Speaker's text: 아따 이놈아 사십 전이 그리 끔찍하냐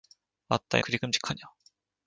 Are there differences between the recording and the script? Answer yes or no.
yes